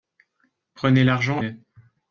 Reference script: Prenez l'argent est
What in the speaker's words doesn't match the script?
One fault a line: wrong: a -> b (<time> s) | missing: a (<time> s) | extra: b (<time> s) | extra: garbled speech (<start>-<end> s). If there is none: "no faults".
no faults